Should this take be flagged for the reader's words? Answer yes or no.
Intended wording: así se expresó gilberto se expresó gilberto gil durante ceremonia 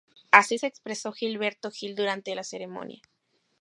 yes